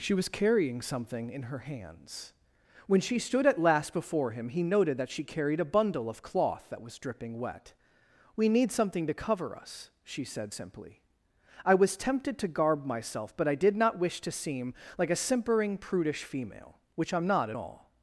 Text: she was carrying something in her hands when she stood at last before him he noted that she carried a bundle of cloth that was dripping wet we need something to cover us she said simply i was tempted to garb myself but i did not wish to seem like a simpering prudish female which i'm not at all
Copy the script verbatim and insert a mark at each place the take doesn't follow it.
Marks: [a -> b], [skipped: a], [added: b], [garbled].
she was carrying something in her hands when she stood at last before him he noted that she carried a bundle of cloth that was dripping wet we need something to cover us she said simply i was tempted to garb myself but i did not wish to seem like a simpering prudish female which i'm not at all